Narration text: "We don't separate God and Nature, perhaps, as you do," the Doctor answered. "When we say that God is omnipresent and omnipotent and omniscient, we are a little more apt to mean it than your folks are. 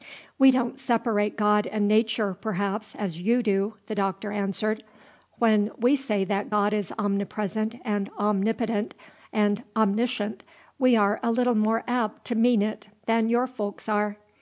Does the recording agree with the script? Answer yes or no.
yes